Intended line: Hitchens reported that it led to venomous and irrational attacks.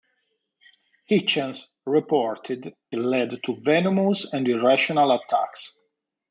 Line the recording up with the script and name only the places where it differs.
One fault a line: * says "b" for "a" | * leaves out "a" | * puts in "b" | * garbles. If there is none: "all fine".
* leaves out "that it"